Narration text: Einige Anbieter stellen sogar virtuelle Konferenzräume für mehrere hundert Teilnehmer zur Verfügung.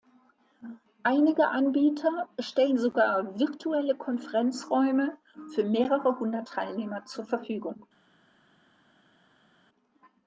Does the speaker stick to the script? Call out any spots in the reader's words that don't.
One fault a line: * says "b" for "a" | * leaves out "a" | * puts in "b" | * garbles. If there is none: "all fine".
all fine